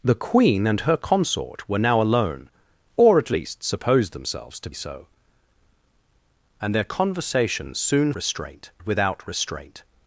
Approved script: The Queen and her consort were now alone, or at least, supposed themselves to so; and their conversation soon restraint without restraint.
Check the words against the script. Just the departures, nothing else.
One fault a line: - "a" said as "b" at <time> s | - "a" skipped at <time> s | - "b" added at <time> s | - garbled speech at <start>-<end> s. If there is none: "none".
none